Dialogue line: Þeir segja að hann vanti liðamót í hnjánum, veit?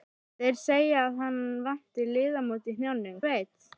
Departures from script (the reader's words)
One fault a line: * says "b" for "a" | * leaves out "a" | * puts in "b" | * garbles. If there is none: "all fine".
all fine